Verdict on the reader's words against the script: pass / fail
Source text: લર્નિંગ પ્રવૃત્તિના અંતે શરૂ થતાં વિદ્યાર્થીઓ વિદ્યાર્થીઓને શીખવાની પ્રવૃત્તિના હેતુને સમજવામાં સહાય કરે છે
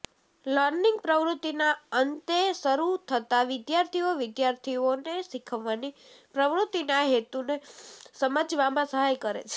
pass